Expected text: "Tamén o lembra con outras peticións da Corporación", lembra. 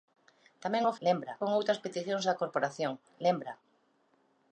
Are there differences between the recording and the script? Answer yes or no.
no